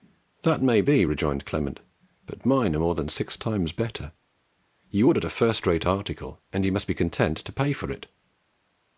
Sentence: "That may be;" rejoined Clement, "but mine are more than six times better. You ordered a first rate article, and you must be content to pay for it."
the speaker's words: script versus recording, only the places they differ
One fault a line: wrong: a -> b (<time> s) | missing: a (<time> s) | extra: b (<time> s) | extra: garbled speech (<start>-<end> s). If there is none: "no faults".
no faults